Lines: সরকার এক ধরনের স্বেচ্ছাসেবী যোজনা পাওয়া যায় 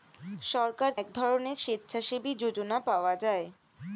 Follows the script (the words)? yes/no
yes